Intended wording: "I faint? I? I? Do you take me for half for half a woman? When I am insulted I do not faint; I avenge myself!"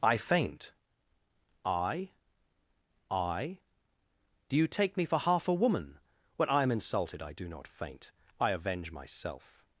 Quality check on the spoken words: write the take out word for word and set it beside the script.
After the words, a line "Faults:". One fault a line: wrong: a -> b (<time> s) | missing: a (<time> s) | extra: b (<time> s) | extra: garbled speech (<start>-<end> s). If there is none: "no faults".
"I faint? I? I? Do you take me for half a woman? When I am insulted I do not faint; I avenge myself!"
Faults:
missing: for half (5.5 s)